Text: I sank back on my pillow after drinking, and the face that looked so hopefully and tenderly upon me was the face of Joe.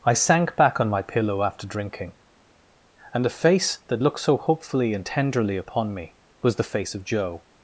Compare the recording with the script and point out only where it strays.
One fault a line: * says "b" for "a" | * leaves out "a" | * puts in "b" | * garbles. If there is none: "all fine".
all fine